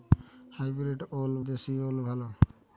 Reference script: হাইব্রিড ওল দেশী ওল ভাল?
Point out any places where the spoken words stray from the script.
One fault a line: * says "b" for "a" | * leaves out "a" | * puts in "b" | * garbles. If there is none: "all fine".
all fine